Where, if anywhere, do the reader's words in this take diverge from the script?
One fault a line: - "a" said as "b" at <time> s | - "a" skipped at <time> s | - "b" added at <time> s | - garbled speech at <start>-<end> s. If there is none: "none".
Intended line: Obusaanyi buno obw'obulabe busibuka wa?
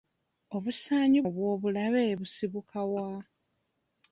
- "buno" skipped at 1.2 s